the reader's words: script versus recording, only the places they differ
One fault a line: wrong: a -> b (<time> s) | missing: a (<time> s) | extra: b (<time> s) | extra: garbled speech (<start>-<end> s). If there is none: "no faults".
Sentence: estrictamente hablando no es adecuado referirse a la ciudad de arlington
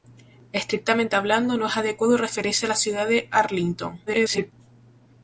extra: garbled speech (4.1-4.5 s)